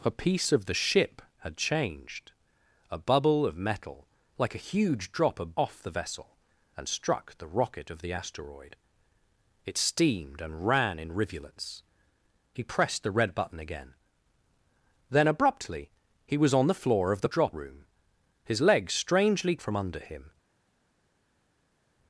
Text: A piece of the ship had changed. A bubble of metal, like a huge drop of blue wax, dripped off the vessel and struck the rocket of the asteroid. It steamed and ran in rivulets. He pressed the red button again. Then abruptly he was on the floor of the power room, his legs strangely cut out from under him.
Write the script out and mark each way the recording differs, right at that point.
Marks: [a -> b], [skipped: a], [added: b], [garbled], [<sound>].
A piece of the ship had changed. A bubble of metal, like a huge drop of [skipped: blue wax, dripped] off the vessel and struck the rocket of the asteroid. It steamed and ran in rivulets. He pressed the red button again. Then abruptly he was on the floor of the [power -> drop] room, his legs strangely [skipped: cut out] from under him.